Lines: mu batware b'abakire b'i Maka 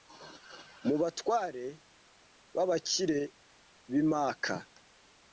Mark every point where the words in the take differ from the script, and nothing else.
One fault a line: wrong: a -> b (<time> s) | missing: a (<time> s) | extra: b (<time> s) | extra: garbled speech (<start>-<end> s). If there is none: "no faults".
no faults